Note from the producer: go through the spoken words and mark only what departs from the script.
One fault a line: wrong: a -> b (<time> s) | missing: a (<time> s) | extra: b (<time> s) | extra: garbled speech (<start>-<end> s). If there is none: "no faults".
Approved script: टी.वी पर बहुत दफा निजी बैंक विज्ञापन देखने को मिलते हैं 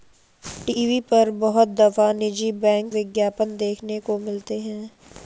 no faults